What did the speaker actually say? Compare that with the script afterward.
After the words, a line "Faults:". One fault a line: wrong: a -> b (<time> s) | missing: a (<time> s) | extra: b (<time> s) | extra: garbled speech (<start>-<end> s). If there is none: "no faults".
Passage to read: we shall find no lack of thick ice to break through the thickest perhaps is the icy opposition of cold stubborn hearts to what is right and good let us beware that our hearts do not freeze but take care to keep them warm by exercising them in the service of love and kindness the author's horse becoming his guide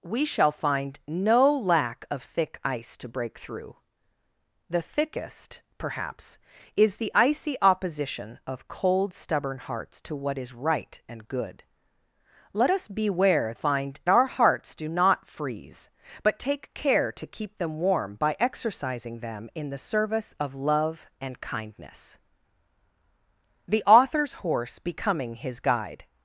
we shall find no lack of thick ice to break through the thickest perhaps is the icy opposition of cold stubborn hearts to what is right and good let us beware find our hearts do not freeze but take care to keep them warm by exercising them in the service of love and kindness the author's horse becoming his guide
Faults:
wrong: that -> find (13.5 s)